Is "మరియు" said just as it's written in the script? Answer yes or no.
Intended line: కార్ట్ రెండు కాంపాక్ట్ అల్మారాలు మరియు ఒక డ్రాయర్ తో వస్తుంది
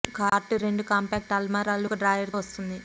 no